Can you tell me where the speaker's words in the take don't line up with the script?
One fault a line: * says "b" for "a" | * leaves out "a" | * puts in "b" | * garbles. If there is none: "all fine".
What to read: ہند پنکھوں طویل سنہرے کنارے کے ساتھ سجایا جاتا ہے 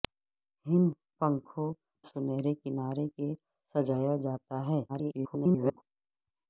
* leaves out "طویل"
* leaves out "ساتھ"
* garbles